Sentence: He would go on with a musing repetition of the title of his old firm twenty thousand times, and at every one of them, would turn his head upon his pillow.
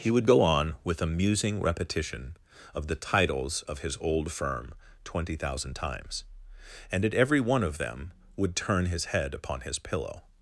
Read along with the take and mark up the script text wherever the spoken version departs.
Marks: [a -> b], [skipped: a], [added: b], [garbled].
He would go on with a musing repetition of the [title -> titles] of his old firm twenty thousand times, and at every one of them, would turn his head upon his pillow.